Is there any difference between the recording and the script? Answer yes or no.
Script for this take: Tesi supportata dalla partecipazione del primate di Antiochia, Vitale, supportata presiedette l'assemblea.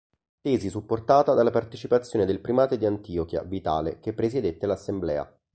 yes